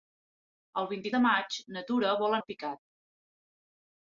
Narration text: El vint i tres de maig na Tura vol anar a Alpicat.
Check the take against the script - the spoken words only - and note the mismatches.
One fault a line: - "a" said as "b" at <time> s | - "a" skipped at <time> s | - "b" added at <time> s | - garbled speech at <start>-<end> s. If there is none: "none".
- "tres" skipped at 1.1 s
- "anar" skipped at 2.4 s